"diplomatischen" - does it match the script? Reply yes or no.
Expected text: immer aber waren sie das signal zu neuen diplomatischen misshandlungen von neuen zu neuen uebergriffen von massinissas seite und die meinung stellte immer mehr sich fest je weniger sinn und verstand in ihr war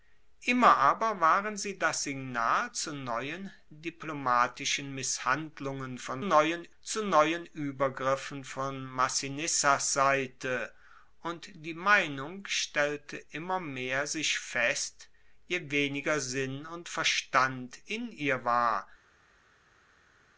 yes